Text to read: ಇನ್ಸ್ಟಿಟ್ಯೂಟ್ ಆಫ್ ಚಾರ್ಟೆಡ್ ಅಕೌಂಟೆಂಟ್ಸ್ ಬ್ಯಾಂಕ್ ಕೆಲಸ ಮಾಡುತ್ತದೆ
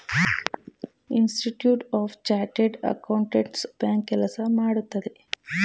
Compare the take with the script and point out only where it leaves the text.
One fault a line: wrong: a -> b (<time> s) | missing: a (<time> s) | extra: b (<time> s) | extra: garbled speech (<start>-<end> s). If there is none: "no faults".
no faults